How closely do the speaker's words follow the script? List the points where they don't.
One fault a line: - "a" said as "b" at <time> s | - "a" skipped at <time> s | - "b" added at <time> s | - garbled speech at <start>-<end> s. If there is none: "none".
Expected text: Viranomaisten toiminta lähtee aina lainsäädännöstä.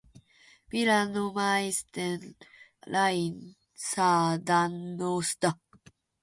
- "toiminta lähtee aina" skipped at 2.4 s